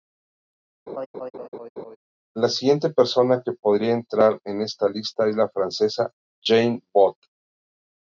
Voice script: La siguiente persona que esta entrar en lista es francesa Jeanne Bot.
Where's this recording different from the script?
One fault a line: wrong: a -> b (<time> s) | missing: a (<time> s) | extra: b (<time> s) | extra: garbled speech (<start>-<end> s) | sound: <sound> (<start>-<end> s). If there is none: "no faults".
sound: laugh (0.9-2.0 s)
wrong: esta -> podría (3.5 s)
extra: esta (4.6 s)
extra: la (5.3 s)